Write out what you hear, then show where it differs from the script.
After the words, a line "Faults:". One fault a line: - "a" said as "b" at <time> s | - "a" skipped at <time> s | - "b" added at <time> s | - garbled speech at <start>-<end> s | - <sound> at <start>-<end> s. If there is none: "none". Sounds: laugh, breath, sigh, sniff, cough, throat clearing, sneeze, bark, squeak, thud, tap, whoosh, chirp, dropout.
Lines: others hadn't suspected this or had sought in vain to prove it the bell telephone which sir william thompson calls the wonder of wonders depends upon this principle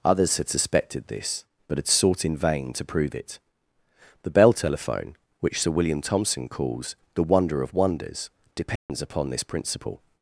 others had suspected this but had sought in vain to prove it the bell telephone which sir william thompson calls the wonder of wonders depends upon this principle
Faults:
- "hadn't" said as "had" at 0.4 s
- "or" said as "but" at 1.7 s
- dropout at 8.8-8.9 s